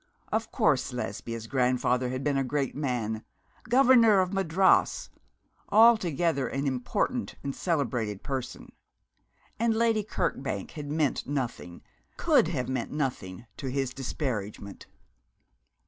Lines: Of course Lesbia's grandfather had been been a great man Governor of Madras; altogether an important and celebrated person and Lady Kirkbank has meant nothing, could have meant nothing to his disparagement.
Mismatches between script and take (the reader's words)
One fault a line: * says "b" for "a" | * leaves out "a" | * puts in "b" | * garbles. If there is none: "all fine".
* leaves out "been"
* says "had" for "has"